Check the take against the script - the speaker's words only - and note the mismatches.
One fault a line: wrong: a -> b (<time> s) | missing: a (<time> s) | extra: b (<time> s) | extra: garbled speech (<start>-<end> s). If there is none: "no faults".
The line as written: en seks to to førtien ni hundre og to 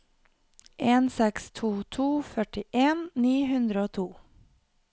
no faults